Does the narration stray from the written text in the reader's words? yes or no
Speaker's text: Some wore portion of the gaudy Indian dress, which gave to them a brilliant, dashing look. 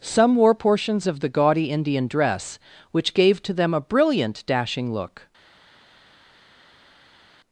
yes